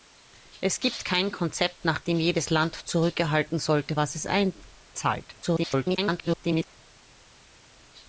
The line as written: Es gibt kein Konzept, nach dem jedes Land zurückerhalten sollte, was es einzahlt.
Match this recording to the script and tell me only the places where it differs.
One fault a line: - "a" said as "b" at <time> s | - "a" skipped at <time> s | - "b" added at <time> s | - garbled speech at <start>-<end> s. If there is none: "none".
- garbled speech at 5.4-6.7 s